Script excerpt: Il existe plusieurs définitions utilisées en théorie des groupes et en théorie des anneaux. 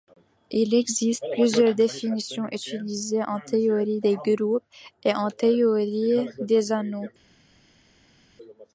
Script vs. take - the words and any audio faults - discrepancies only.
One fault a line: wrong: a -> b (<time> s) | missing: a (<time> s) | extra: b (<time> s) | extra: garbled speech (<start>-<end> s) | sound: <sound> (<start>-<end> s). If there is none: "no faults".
no faults